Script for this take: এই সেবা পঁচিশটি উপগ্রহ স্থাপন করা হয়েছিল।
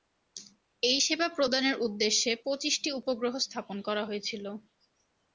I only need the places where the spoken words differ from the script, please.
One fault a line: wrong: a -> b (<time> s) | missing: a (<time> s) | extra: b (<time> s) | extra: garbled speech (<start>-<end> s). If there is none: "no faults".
extra: প্রদানের উদ্দেশ্যে (1.4 s)